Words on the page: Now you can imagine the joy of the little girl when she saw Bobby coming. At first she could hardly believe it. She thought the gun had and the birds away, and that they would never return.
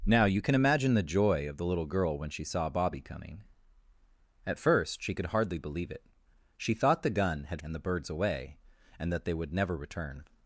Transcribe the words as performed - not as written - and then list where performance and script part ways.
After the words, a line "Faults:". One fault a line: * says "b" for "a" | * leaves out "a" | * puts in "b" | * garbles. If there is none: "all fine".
Now you can imagine the joy of the little girl when she saw Bobby coming. At first she could hardly believe it. She thought the gun had and the birds away, and that they would never return.
Faults:
all fine